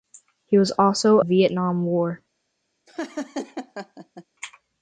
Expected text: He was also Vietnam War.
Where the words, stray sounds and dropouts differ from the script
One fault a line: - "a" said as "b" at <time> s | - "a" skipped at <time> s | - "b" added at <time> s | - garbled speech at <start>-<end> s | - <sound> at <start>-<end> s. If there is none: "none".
- laugh at 2.9-4.3 s